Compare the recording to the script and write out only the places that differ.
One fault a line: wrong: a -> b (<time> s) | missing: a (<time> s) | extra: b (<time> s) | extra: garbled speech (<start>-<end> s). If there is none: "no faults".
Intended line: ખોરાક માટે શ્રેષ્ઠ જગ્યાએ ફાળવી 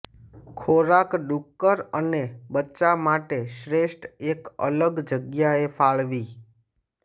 extra: ડુક્કર અને બચ્ચા (1.2 s)
extra: એક અલગ (4.3 s)